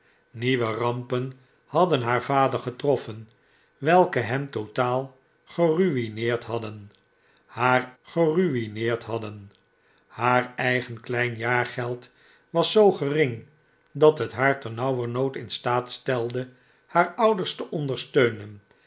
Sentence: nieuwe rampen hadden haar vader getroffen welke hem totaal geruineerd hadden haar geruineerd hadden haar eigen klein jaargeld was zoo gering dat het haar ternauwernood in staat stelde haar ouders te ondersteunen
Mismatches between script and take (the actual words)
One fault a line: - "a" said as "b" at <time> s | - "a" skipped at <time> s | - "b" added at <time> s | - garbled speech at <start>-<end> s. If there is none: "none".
none